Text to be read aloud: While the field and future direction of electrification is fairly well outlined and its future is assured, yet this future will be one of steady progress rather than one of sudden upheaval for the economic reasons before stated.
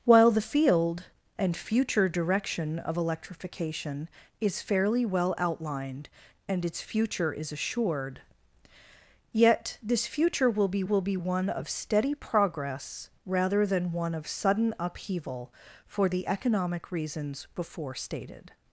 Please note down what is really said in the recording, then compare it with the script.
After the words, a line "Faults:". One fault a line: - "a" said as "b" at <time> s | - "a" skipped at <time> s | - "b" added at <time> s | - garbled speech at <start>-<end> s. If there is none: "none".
While the field and future direction of electrification is fairly well outlined and its future is assured, yet this future will be will be one of steady progress rather than one of sudden upheaval for the economic reasons before stated.
Faults:
- "will be" added at 10.8 s